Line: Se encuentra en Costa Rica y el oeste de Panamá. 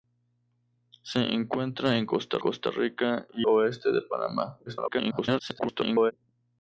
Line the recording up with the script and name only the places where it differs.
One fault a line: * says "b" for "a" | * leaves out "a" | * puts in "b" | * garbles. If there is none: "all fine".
* puts in "Costa"
* leaves out "el"
* garbles